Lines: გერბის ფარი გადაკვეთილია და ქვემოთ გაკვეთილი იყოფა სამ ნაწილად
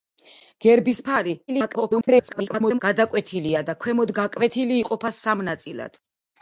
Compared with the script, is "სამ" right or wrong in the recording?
right